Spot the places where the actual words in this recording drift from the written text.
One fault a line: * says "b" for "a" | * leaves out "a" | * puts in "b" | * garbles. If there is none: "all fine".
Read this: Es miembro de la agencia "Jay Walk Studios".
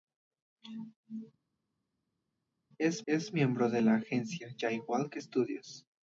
* puts in "es"